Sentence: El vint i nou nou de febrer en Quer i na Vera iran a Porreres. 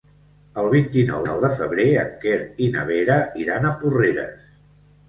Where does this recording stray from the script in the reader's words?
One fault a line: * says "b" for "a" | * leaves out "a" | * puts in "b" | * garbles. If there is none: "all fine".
all fine